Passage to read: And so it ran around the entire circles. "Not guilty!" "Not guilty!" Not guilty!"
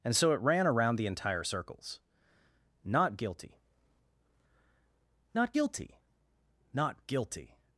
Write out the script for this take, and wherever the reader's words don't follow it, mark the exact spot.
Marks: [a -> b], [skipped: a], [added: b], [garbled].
And so it ran around the entire circles. "Not guilty!" "Not guilty!" Not guilty!"